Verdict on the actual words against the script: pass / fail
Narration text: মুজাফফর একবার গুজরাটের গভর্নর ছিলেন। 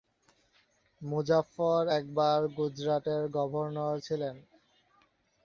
pass